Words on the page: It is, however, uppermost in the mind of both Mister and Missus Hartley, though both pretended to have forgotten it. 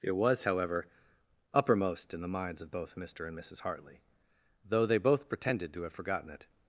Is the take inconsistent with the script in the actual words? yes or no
yes